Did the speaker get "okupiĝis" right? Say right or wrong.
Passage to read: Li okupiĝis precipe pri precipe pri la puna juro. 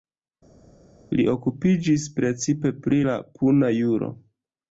right